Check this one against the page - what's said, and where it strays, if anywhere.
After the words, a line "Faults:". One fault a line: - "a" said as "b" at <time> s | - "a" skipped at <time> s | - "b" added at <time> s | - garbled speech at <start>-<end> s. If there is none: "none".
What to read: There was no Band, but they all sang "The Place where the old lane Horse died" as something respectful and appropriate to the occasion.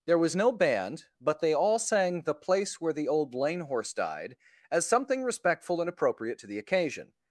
There was no Band, but they all sang "The Place where the old lane Horse died" as something respectful and appropriate to the occasion.
Faults:
none